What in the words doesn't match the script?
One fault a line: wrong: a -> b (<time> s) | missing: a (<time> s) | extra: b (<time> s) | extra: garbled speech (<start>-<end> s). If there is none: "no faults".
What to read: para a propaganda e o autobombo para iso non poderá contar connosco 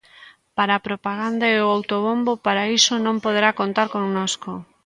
no faults